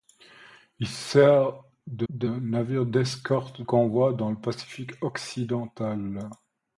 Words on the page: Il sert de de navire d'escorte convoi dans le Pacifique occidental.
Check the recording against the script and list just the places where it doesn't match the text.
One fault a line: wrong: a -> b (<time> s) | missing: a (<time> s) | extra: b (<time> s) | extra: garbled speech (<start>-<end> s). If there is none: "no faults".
no faults